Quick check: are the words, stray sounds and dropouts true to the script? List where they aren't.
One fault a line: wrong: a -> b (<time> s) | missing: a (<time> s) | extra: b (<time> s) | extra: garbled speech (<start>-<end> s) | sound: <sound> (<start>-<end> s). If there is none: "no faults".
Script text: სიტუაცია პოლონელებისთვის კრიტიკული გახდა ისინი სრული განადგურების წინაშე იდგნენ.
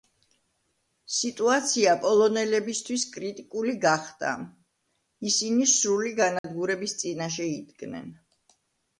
sound: dropout (6.4-6.4 s)